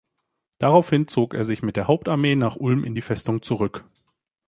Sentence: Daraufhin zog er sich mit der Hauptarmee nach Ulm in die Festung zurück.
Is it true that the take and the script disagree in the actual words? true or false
false